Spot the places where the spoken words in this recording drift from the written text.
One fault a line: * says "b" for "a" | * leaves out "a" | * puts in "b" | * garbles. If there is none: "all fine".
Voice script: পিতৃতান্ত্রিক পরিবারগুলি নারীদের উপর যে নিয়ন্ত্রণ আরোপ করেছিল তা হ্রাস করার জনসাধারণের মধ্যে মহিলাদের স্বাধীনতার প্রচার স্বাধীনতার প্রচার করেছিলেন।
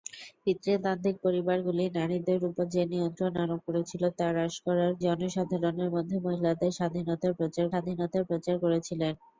all fine